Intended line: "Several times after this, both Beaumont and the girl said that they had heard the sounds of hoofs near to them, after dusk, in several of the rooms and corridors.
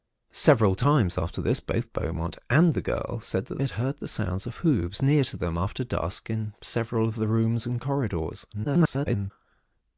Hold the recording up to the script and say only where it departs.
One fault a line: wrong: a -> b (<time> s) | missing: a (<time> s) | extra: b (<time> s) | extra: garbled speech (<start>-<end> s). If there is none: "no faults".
missing: they (3.6 s)
extra: garbled speech (8.5-9.3 s)